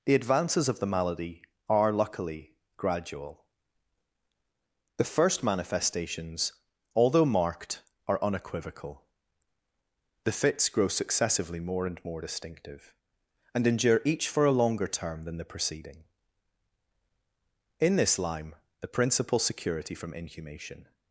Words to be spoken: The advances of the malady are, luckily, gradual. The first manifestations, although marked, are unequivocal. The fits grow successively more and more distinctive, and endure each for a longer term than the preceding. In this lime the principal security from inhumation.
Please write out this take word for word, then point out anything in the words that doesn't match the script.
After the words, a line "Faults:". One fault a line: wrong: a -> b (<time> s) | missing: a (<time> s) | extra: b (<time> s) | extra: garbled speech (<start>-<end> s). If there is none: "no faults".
The advances of the malady are, luckily, gradual. The first manifestations, although marked, are unequivocal. The fits grow successively more and more distinctive, and endure each for a longer term than the preceding. In this lime the principal security from inhumation.
Faults:
no faults